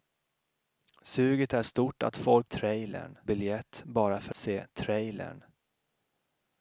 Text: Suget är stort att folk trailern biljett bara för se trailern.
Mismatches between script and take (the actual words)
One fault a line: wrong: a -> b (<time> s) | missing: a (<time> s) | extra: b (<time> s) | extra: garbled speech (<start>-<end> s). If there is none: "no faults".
no faults